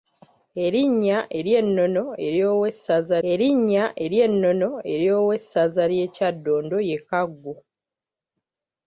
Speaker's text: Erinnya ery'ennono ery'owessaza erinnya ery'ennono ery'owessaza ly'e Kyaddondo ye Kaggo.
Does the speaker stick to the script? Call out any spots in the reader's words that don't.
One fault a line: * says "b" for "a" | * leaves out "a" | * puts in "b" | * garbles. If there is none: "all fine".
all fine